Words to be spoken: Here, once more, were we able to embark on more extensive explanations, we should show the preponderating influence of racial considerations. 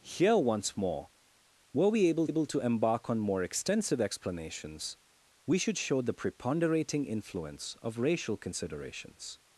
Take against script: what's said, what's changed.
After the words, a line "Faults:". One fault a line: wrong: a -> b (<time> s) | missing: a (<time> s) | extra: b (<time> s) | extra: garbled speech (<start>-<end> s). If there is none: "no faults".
Here, once more, were we able able to embark on more extensive explanations, we should show the preponderating influence of racial considerations.
Faults:
extra: able (2.3 s)